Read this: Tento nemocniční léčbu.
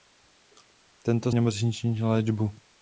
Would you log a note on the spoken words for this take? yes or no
no